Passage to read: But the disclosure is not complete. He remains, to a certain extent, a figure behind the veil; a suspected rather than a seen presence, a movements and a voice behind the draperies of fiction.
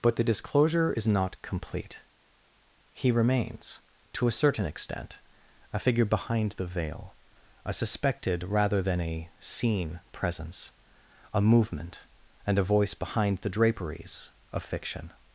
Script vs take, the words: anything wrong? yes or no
yes